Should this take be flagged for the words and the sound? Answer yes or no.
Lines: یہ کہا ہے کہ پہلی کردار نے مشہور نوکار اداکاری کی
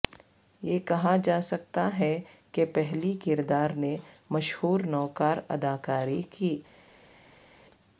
yes